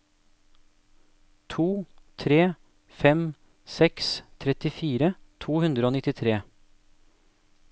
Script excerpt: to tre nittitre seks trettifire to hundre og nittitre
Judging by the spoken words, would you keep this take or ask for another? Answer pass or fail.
fail